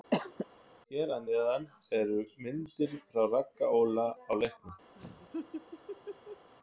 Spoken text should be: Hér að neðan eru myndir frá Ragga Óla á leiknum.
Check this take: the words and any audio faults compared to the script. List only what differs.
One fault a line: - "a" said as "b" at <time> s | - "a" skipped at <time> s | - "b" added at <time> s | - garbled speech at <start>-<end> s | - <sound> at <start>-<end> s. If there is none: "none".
- cough at 0.1-0.5 s
- laugh at 4.9-6.5 s